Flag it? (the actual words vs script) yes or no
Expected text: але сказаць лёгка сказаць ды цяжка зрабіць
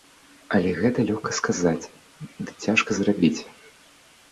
yes